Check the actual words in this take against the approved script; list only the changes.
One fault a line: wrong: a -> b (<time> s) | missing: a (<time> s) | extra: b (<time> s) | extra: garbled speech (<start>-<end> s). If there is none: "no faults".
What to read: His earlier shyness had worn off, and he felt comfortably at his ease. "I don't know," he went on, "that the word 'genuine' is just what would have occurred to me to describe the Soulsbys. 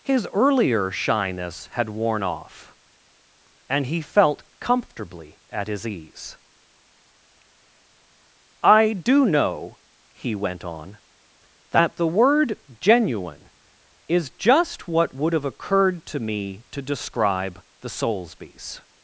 wrong: don't -> do (8.9 s)